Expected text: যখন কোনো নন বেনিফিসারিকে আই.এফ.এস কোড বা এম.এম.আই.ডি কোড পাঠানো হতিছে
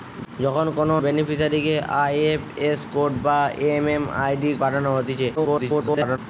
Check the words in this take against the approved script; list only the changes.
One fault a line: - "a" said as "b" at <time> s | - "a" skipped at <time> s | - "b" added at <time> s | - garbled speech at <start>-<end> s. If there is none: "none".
- "নন" skipped at 0.9 s
- "কোড" skipped at 4.5 s
- garbled speech at 5.4-6.2 s